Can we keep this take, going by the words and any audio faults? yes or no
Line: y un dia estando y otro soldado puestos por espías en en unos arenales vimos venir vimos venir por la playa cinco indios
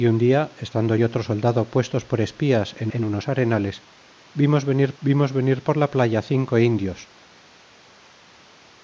yes